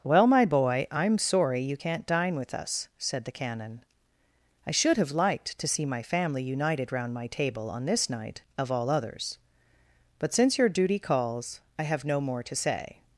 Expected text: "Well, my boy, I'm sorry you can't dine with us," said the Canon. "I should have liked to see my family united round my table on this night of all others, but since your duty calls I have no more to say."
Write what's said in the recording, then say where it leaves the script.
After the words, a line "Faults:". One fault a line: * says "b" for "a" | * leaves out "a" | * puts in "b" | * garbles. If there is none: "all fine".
"Well, my boy, I'm sorry you can't dine with us," said the Canon. "I should have liked to see my family united round my table on this night of all others, but since your duty calls I have no more to say."
Faults:
all fine